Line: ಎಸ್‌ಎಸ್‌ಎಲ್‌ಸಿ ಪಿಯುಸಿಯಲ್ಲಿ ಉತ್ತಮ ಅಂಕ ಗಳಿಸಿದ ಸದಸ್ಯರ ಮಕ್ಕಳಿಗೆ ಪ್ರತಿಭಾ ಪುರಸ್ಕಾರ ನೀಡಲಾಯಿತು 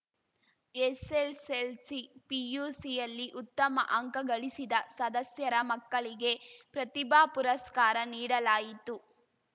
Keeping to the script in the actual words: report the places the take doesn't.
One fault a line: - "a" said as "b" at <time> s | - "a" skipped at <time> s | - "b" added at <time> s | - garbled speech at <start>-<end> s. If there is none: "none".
none